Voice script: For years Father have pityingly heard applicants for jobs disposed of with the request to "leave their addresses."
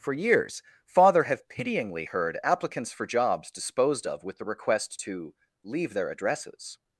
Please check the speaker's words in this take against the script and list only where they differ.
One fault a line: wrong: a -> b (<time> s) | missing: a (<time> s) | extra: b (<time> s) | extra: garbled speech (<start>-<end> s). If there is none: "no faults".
no faults